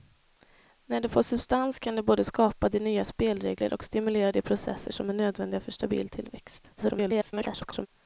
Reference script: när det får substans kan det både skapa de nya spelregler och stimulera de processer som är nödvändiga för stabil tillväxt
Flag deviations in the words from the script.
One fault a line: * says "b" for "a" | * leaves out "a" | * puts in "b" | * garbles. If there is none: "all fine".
* garbles